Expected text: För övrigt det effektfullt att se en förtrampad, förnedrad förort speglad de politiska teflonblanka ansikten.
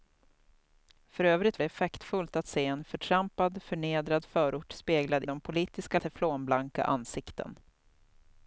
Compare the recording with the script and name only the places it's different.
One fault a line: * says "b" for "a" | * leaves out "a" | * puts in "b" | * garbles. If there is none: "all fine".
all fine